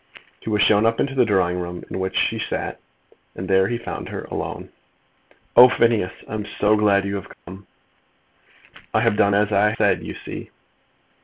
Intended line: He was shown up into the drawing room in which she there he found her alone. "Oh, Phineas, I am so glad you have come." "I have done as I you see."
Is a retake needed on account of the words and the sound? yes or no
yes